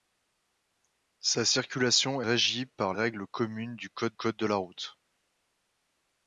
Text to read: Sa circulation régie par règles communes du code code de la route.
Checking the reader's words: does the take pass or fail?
pass